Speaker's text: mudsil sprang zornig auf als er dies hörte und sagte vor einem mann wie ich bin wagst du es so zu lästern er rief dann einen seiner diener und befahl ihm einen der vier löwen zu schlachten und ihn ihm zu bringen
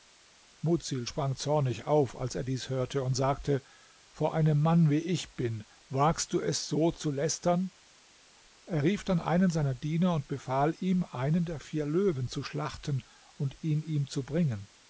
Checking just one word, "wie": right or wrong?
right